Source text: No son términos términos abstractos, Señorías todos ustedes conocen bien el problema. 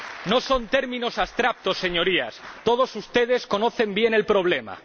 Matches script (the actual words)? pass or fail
fail